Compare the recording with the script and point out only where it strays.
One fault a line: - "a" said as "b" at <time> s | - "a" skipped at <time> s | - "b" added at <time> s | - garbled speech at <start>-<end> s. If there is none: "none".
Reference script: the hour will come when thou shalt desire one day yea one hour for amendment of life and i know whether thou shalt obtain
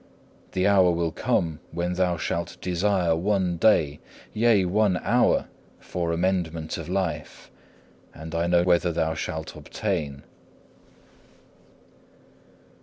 none